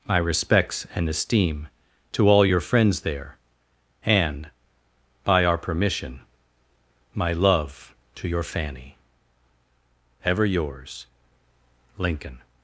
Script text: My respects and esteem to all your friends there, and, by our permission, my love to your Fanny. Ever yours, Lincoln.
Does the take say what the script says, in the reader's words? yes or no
yes